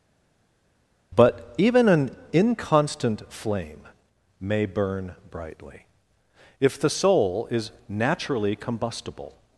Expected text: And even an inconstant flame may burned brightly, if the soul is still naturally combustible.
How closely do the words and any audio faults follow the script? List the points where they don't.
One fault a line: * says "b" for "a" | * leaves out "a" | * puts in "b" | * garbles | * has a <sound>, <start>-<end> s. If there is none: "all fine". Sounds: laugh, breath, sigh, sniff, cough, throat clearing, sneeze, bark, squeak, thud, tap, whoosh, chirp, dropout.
* says "But" for "And"
* says "burn" for "burned"
* leaves out "still"